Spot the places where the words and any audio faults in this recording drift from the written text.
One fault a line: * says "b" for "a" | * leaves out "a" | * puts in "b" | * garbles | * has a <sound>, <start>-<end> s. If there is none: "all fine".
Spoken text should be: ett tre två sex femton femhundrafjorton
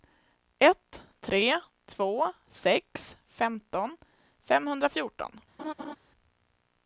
* has a laugh, 5.6-6.0 s